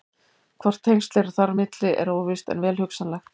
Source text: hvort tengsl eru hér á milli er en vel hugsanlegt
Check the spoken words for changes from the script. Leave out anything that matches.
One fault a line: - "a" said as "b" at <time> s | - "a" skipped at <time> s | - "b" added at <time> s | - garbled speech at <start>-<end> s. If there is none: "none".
- "hér" said as "þar" at 1.4 s
- "óvíst" added at 2.2 s